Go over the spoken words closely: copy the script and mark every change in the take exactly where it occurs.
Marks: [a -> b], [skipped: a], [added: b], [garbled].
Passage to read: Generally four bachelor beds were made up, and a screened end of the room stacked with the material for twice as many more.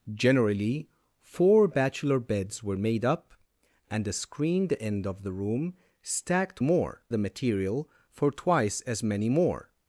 Generally four bachelor beds were made up, and a screened end of the room stacked [with -> more] the material for twice as many more.